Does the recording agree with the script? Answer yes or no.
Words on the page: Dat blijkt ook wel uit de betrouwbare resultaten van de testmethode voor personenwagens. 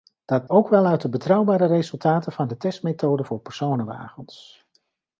no